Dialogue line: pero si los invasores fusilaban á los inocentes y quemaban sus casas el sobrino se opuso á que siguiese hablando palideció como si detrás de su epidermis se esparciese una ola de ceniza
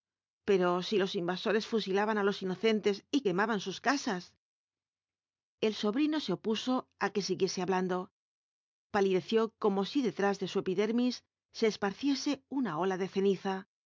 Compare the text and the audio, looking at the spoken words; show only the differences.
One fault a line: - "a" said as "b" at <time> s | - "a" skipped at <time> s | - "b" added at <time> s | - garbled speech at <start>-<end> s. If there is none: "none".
none